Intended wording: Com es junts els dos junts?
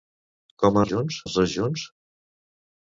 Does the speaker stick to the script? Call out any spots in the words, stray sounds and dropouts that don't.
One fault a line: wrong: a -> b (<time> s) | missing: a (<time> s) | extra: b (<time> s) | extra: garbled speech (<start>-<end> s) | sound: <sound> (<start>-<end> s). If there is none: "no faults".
no faults